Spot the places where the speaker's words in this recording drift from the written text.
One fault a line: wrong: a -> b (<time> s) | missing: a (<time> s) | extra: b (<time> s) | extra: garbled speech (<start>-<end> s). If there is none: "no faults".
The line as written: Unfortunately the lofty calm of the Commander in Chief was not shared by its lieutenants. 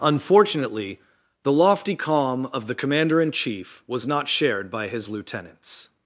wrong: its -> his (4.9 s)